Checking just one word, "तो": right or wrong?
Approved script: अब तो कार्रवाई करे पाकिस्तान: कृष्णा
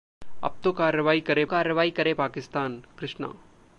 right